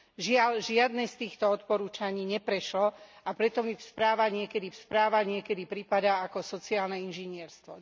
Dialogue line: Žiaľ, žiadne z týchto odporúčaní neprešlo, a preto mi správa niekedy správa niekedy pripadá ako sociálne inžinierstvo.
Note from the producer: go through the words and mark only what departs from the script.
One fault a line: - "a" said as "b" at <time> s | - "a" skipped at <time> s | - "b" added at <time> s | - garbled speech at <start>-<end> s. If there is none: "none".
none